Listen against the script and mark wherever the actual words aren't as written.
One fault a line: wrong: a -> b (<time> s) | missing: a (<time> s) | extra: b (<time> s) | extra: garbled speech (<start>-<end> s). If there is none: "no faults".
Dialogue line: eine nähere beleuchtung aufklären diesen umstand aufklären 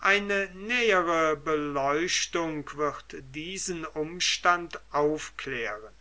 wrong: aufklären -> wird (2.8 s)